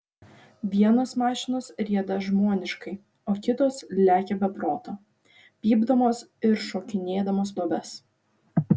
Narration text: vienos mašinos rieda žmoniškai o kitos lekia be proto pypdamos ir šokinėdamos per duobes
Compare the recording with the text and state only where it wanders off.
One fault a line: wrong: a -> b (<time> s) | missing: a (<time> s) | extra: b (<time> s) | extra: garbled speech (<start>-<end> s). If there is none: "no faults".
missing: per (7.5 s)